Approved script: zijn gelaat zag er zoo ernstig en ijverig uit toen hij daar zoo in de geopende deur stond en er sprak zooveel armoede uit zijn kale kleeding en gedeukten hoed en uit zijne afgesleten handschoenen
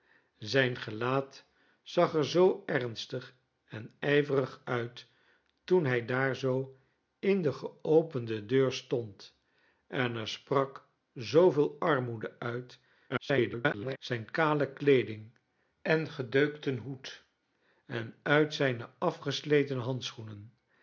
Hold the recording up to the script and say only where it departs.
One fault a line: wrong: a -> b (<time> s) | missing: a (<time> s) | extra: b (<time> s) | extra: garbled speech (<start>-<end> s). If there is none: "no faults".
extra: garbled speech (13.1-14.0 s)